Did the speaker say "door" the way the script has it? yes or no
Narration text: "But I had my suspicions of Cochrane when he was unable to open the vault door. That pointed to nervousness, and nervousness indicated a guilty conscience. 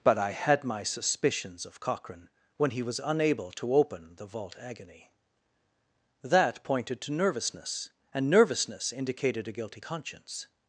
no